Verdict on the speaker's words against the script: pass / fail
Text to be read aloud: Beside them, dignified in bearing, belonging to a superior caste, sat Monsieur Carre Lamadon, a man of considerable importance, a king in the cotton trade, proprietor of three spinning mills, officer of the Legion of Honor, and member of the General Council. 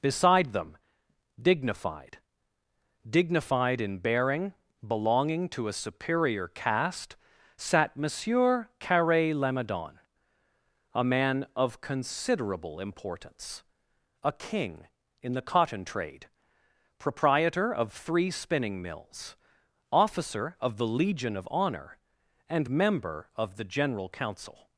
fail